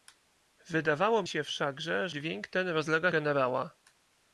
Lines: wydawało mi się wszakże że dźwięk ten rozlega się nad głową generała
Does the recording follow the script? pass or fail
fail